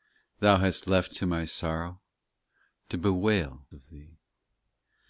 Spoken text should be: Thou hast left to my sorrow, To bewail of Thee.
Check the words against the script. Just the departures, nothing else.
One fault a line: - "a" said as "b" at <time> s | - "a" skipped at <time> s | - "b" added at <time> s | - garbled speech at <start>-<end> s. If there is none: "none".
none